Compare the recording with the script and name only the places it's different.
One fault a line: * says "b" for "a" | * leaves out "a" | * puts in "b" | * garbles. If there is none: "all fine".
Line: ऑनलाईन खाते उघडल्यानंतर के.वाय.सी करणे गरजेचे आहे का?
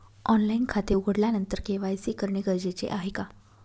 all fine